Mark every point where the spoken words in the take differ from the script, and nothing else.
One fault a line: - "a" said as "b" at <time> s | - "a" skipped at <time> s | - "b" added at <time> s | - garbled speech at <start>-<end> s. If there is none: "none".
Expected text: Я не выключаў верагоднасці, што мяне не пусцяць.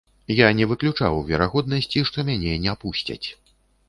none